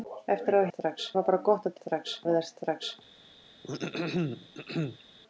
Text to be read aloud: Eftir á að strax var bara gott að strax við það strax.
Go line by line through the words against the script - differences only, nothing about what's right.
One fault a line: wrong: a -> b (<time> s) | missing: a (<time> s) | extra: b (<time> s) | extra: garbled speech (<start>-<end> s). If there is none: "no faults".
no faults